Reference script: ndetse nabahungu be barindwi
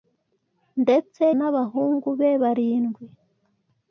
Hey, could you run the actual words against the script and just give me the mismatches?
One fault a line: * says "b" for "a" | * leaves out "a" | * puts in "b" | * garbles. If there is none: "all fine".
all fine